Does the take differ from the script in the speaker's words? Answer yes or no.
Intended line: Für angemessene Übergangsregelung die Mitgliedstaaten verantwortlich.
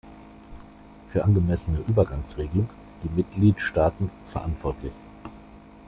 no